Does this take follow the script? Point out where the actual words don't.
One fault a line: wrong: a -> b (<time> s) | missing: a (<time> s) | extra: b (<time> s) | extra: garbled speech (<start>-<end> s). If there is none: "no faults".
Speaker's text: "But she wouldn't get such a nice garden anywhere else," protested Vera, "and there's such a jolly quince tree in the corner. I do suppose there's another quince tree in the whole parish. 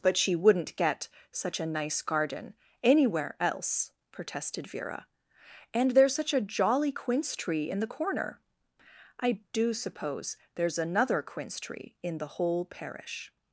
no faults